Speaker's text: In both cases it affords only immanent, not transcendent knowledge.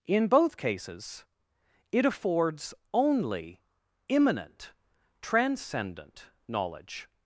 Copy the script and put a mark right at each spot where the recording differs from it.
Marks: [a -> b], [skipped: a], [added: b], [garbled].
In both cases it affords only immanent, [skipped: not] transcendent knowledge.